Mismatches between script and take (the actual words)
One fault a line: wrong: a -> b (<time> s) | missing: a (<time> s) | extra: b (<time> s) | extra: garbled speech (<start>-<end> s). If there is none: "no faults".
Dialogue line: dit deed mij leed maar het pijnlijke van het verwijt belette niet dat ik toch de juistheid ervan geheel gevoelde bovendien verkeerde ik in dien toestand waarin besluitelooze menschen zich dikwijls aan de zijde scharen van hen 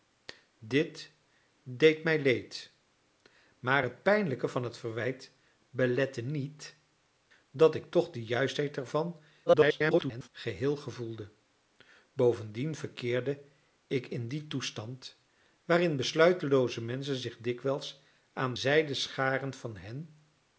extra: garbled speech (9.5-10.3 s)
missing: de (18.5 s)